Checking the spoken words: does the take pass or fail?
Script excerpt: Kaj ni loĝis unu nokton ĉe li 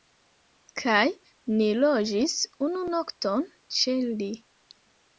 pass